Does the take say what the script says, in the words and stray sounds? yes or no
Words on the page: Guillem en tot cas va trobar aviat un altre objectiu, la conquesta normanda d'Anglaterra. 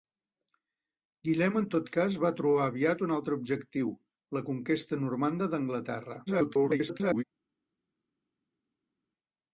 no